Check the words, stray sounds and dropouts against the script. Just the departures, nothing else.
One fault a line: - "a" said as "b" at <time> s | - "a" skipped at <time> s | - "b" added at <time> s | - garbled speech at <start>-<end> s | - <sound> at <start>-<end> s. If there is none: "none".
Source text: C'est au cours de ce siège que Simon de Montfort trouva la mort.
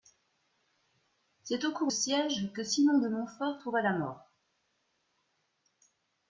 - "de ce" skipped at 1.9 s